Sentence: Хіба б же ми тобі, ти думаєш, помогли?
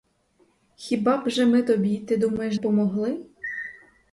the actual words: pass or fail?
pass